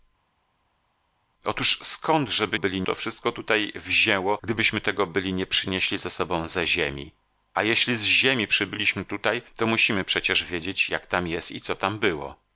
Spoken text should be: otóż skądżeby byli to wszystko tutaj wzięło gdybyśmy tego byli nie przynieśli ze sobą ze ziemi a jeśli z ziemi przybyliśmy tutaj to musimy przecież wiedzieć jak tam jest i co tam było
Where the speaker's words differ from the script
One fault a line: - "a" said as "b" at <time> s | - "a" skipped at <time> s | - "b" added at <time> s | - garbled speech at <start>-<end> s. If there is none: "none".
none